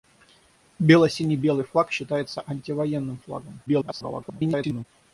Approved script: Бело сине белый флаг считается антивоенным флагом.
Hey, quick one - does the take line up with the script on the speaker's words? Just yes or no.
no